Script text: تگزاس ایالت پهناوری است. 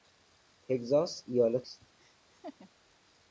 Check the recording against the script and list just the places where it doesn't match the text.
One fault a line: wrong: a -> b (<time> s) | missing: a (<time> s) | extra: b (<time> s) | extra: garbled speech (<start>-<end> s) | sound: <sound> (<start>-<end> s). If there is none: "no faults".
missing: پهناوری (1.7 s)
sound: laugh (2.0-2.7 s)